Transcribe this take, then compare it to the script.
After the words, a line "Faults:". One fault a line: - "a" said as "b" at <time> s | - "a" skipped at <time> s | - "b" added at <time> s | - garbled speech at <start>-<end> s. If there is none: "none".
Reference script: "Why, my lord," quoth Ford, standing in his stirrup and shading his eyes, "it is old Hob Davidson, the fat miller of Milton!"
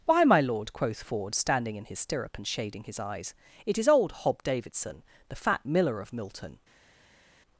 "Why, my lord," quoth Ford, standing in his stirrup and shading his eyes, "it is old Hob Davidson, the fat miller of Milton!"
Faults:
none